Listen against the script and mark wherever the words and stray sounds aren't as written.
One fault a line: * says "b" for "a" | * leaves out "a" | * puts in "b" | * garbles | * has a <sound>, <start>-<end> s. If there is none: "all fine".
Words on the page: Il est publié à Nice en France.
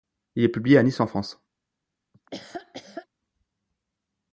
* has a laugh, 2.1-3.1 s